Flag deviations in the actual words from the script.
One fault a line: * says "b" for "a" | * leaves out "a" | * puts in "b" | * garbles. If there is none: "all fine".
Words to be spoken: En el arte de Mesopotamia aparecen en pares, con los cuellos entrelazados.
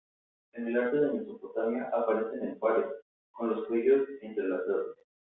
all fine